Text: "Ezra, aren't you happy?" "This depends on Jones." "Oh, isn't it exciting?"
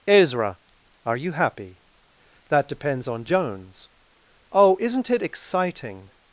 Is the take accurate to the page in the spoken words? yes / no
no